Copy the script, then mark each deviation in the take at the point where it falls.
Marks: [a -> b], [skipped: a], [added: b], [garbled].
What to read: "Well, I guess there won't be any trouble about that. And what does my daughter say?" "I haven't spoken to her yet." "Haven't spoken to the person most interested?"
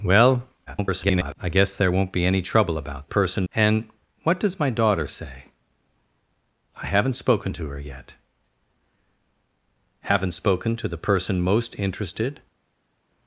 "Well, [garbled] I guess there won't be any trouble about [that. -> person] And what does my daughter say?" "I haven't spoken to her yet." "Haven't spoken to the person most interested?"